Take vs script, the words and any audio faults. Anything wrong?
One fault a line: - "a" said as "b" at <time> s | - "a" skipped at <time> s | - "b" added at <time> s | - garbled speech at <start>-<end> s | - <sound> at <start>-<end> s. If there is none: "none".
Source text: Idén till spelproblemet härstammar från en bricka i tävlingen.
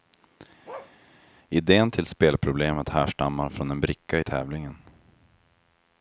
- bark at 0.6-0.9 s